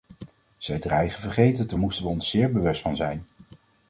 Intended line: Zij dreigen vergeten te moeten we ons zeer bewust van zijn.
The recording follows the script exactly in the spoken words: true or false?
true